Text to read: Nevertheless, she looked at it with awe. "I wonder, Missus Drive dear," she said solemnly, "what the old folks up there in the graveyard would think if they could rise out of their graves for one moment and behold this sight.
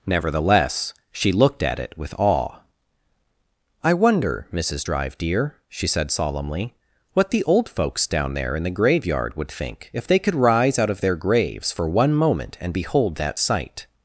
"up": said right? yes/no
no